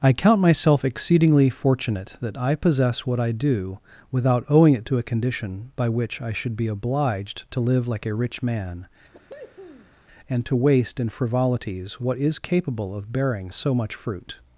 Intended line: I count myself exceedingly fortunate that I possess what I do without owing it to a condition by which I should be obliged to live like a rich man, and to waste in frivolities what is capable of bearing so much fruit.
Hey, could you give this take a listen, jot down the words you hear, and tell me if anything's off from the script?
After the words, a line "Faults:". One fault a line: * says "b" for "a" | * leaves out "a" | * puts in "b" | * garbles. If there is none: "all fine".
I count myself exceedingly fortunate that I possess what I do without owing it to a condition by which I should be obliged to live like a rich man, and to waste in frivolities what is capable of bearing so much fruit.
Faults:
all fine